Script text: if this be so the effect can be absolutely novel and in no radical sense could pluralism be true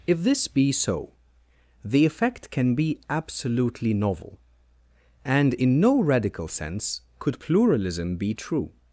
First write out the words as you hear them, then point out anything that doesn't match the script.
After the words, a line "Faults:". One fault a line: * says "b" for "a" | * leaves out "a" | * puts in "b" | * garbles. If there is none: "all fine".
if this be so the effect can be absolutely novel and in no radical sense could pluralism be true
Faults:
all fine